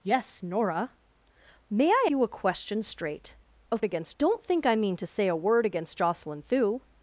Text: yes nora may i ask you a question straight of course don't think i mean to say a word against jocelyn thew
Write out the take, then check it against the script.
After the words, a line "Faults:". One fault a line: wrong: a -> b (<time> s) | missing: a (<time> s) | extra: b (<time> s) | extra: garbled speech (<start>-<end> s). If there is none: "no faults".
yes nora may i you a question straight of against don't think i mean to say a word against jocelyn thew
Faults:
missing: ask (2.0 s)
wrong: course -> against (3.8 s)